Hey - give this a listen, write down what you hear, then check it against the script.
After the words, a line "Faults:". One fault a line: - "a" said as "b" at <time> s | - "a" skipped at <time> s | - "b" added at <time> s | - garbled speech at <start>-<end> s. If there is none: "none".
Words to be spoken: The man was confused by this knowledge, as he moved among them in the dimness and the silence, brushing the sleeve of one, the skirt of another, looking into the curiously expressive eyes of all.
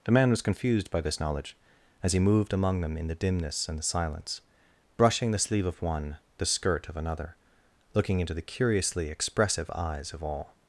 The man was confused by this knowledge, as he moved among them in the dimness and the silence, brushing the sleeve of one, the skirt of another, looking into the curiously expressive eyes of all.
Faults:
none